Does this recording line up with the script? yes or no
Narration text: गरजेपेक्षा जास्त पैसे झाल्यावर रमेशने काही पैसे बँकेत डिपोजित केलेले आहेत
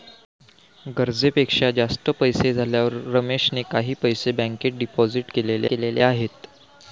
no